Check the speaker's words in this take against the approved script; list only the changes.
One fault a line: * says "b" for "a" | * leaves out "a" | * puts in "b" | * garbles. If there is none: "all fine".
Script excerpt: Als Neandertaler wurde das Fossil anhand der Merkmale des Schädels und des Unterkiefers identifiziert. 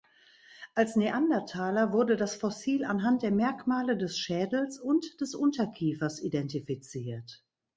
all fine